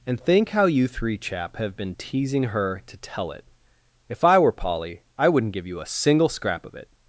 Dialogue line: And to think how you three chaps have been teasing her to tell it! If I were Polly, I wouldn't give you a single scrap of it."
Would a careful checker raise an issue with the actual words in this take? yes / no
yes